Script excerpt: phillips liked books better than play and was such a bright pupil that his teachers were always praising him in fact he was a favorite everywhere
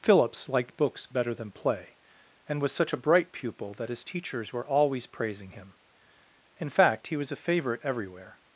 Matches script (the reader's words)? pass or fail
pass